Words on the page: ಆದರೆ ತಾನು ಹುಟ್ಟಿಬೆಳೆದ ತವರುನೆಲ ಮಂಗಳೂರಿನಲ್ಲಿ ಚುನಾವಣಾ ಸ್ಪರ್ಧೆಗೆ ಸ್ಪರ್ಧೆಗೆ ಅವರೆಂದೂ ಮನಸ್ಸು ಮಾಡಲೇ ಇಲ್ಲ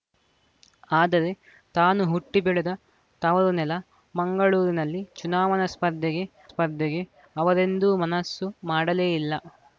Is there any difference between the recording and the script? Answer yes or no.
no